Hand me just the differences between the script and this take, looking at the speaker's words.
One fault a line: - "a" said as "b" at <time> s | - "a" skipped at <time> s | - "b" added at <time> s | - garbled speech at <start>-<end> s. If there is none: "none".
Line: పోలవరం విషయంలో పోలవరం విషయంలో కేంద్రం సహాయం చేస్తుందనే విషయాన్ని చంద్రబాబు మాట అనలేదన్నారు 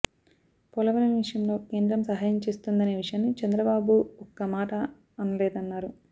- "పోలవరం విషయంలో" skipped at 1.6 s
- "ఒక్క" added at 4.3 s